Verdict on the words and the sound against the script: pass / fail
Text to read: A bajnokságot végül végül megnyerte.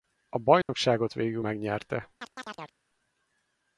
fail